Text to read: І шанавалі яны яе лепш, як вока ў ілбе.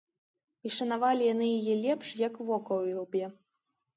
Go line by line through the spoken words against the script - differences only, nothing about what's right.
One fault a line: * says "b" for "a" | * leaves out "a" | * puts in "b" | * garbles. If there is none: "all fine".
all fine